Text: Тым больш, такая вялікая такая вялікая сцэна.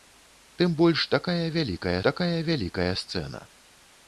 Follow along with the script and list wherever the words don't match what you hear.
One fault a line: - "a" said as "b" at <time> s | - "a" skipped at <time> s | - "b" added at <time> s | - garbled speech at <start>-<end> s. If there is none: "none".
none